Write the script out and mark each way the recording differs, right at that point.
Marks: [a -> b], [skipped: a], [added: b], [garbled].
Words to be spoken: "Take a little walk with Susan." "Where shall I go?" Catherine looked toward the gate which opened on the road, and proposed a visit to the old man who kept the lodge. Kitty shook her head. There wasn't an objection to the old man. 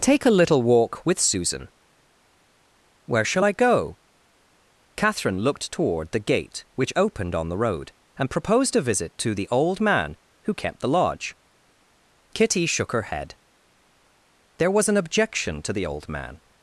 "Take a little walk with Susan." "Where shall I go?" Catherine looked toward the gate which opened on the road, and proposed a visit to the old man who kept the lodge. Kitty shook her head. There [wasn't -> was] an objection to the old man.